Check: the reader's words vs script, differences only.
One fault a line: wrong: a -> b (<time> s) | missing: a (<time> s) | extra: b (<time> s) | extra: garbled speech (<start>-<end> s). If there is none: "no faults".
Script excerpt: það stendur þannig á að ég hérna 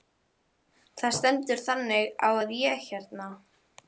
no faults